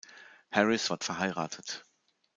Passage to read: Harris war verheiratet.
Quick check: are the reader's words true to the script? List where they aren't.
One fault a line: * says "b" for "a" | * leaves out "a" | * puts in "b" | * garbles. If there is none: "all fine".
all fine